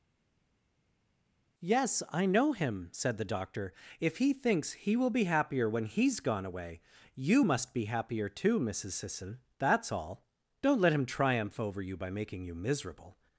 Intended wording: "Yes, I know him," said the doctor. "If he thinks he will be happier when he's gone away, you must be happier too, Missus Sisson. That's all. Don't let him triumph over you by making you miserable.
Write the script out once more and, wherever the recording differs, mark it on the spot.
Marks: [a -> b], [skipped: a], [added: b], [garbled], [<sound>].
"Yes, I know him," said the doctor. "If he thinks he will be happier when he's gone away, you must be happier too, Missus Sisson. That's all. Don't let him triumph over you by making you miserable.